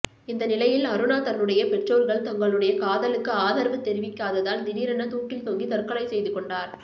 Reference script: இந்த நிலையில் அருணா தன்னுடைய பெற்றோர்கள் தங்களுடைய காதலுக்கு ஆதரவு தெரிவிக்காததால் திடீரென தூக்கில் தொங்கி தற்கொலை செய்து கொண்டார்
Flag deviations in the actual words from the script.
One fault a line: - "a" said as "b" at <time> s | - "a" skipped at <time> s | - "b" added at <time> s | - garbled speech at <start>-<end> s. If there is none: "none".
none